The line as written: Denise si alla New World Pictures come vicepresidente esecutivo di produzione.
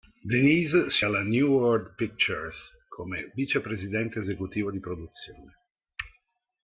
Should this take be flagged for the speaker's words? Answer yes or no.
no